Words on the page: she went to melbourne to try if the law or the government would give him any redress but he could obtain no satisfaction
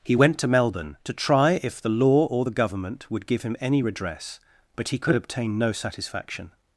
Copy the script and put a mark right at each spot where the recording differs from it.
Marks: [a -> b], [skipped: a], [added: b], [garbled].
[she -> he] went to melbourne to try if the law or the government would give him any redress but he could obtain no satisfaction